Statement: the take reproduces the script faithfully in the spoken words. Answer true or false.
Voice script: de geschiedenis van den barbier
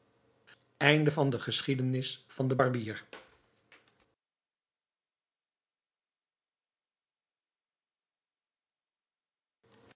true